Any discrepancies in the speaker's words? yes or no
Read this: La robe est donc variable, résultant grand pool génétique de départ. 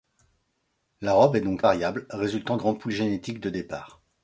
no